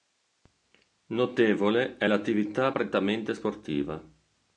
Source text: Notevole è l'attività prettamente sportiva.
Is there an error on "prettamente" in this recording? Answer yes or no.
no